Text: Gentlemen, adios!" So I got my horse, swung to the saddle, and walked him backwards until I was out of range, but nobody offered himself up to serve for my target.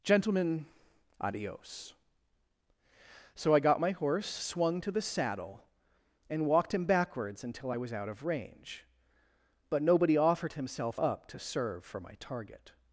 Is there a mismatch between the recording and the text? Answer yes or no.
no